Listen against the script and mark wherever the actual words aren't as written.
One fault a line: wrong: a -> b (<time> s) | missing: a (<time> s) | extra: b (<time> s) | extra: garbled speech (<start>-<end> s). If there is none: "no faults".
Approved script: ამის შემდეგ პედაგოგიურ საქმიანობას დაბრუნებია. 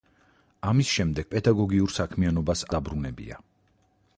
no faults